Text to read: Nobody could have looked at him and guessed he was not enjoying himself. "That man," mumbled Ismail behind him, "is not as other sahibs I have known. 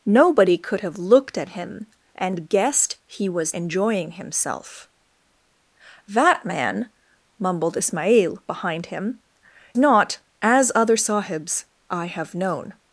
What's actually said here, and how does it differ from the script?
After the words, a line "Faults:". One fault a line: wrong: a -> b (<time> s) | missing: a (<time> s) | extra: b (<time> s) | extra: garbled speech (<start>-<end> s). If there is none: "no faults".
Nobody could have looked at him and guessed he was enjoying himself. "That man," mumbled Ismail behind him, "not as other sahibs I have known.
Faults:
missing: not (3.5 s)
missing: is (9.2 s)